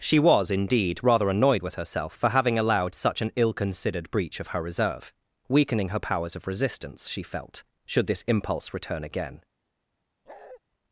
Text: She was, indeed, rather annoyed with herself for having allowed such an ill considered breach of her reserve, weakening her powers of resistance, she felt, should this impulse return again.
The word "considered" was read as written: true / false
true